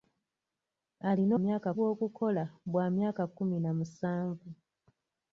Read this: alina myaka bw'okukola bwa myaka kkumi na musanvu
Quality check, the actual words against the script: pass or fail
pass